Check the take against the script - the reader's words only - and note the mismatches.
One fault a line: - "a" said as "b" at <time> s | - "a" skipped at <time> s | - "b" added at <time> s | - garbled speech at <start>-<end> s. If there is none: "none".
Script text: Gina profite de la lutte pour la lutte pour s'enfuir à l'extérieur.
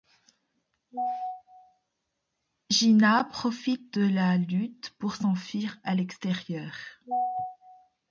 - "la lutte pour" skipped at 5.1 s